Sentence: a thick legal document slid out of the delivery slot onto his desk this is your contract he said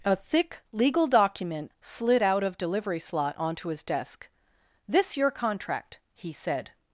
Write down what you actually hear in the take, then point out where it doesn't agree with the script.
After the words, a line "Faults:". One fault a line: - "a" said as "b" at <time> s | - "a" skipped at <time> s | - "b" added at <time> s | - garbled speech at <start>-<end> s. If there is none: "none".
a thick legal document slid out of delivery slot onto his desk this your contract he said
Faults:
- "the" skipped at 2.6 s
- "is" skipped at 5.2 s